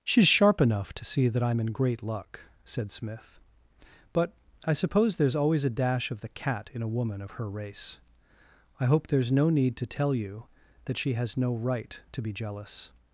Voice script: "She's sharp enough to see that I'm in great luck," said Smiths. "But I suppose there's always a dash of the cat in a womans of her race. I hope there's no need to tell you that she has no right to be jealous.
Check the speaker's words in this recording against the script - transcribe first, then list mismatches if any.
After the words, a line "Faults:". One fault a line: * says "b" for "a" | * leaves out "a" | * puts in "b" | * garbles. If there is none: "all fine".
"She's sharp enough to see that I'm in great luck," said Smith. "But I suppose there's always a dash of the cat in a woman of her race. I hope there's no need to tell you that she has no right to be jealous.
Faults:
* says "Smith" for "Smiths"
* says "woman" for "womans"